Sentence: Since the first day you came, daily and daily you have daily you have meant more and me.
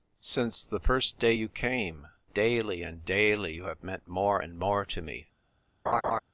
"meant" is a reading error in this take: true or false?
true